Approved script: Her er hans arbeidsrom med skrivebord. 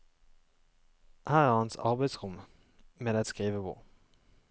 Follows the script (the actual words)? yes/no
yes